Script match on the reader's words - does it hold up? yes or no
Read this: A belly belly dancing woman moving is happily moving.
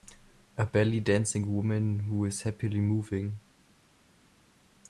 no